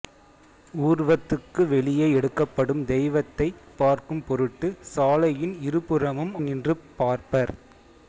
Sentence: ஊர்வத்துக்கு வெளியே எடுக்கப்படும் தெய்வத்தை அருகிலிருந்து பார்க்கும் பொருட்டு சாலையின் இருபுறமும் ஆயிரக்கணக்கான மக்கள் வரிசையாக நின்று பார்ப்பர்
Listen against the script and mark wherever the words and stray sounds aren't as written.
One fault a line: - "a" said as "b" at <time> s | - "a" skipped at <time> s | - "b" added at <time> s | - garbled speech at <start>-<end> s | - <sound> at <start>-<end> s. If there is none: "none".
- "அருகிலிருந்து" skipped at 3.5 s
- "ஆயிரக்கணக்கான மக்கள் வரிசையாக" skipped at 6.3 s